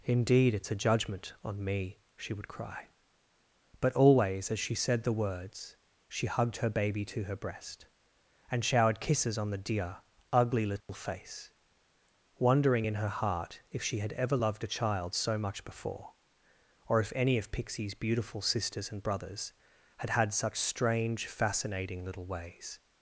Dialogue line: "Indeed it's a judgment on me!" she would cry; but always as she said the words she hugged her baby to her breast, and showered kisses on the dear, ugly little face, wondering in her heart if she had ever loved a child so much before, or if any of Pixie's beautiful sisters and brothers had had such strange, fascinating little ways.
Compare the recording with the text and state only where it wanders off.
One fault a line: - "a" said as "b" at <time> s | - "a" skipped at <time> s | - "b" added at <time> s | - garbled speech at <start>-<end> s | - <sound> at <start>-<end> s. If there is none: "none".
- dropout at 10.8-10.9 s